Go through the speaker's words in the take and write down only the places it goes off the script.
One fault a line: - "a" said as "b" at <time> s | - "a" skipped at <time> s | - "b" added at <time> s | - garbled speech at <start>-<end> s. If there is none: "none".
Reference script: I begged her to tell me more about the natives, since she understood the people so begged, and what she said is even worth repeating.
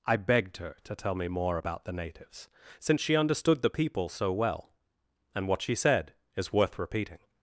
- "begged" said as "well" at 4.3 s
- "even" skipped at 6.5 s